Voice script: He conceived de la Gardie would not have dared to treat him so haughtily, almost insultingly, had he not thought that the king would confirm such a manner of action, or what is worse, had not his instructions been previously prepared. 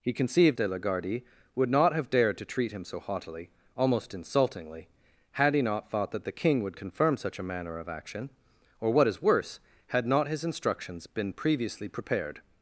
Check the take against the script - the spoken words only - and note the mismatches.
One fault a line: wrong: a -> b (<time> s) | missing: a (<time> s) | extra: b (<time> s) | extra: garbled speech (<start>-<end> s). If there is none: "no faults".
no faults